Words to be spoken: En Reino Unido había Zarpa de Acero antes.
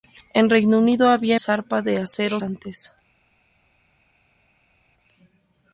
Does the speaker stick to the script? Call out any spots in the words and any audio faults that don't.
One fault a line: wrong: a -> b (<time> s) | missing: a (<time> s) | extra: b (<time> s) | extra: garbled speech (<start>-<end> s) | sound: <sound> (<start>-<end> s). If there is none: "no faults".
no faults